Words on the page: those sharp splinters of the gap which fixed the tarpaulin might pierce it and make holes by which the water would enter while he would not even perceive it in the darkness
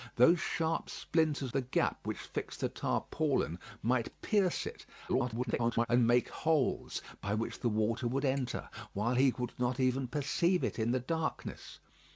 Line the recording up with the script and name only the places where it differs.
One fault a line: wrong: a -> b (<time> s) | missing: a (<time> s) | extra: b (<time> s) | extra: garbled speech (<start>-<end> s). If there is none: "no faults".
missing: of (1.5 s)
extra: garbled speech (5.1-5.9 s)